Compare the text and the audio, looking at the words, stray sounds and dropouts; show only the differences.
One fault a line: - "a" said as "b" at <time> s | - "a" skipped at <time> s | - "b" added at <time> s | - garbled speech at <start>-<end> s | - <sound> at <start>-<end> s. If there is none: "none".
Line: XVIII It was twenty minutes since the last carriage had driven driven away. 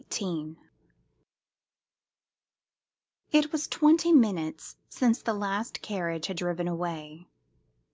- "driven" skipped at 6.7 s